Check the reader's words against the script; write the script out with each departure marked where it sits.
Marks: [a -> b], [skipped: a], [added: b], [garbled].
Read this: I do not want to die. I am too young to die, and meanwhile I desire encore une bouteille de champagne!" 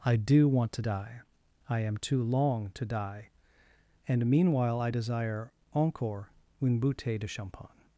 I do [skipped: not] want to die. I am too [young -> long] to die, and meanwhile I desire encore une bouteille de champagne!"